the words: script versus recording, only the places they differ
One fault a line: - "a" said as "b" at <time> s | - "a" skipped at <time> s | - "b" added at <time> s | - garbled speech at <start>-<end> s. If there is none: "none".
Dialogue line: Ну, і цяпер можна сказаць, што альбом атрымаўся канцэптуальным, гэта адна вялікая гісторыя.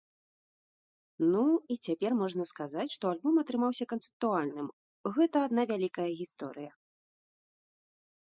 none